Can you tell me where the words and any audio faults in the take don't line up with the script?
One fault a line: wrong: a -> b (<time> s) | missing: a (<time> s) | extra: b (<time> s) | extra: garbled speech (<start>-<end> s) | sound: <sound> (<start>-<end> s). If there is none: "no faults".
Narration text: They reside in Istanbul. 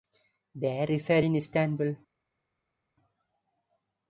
no faults